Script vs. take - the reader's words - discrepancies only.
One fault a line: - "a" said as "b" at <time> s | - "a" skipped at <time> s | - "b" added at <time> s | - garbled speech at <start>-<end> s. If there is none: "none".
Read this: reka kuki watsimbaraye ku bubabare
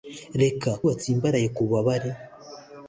- "kuki" skipped at 0.7 s